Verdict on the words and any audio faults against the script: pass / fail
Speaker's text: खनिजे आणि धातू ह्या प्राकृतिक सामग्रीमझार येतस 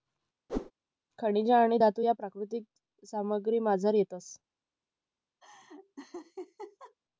fail